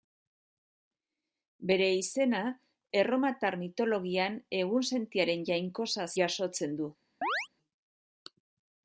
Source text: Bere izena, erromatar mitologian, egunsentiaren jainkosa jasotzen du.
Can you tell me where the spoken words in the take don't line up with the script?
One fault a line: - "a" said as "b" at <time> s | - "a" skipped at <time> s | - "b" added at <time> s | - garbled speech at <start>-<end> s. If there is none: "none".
none